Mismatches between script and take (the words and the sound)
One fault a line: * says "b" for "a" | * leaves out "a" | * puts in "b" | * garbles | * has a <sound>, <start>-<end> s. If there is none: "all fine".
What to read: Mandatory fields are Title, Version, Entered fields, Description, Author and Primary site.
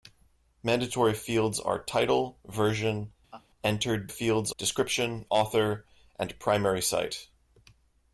* has a laugh, 3.3-3.5 s